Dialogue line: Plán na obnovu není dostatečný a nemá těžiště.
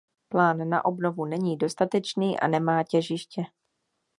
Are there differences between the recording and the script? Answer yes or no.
no